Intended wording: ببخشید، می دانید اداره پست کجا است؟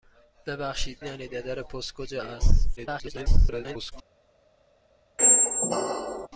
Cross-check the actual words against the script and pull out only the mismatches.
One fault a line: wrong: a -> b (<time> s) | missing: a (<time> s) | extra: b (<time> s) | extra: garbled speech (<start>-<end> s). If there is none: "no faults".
missing: می (1.0 s)
extra: garbled speech (2.8-3.9 s)